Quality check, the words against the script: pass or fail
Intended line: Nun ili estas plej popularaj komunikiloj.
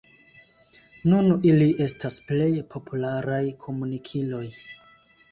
pass